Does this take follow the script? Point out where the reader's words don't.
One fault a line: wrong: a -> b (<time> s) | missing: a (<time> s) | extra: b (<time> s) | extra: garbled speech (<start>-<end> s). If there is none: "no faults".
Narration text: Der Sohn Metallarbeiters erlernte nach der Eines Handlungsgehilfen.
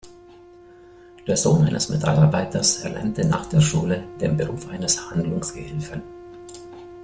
extra: eines (1.6 s)
extra: Schule den Beruf (3.6 s)